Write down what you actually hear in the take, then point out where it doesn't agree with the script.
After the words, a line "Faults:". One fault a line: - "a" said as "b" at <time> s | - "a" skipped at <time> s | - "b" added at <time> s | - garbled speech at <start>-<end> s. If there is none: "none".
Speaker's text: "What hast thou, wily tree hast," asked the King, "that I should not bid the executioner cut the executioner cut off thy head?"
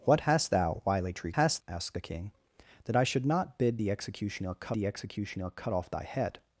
"What hast thou, wily tree hast," asked the King, "that I should not bid the executioner cut the executioner cut off thy head?"
Faults:
none